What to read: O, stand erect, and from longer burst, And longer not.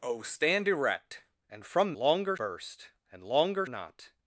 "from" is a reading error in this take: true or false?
false